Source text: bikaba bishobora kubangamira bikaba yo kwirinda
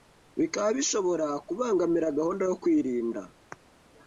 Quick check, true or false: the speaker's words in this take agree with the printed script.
false